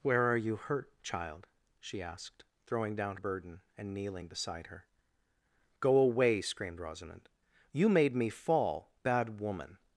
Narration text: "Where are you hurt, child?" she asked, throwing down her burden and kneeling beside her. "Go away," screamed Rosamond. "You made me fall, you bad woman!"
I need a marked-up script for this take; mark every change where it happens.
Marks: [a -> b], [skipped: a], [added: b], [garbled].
"Where are you hurt, child?" she asked, throwing down [skipped: her] burden and kneeling beside her. "Go away," screamed Rosamond. "You made me fall, [skipped: you] bad woman!"